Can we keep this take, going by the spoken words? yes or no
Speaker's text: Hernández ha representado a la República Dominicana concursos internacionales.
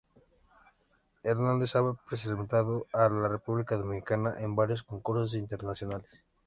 no